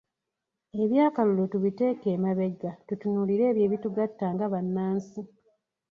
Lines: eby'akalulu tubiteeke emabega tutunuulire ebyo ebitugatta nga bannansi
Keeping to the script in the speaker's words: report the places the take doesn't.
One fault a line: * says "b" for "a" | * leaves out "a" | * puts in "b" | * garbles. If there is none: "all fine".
all fine